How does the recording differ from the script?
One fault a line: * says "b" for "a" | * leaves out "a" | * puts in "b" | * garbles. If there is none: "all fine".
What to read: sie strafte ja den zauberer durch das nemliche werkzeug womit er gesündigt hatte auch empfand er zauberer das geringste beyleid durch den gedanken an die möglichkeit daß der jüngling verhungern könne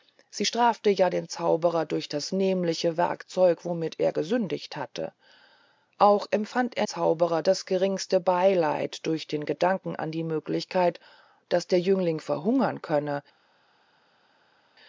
all fine